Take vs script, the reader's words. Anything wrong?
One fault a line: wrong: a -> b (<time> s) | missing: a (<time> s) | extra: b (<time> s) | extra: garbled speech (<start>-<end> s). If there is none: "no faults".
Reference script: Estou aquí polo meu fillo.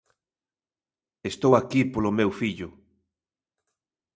no faults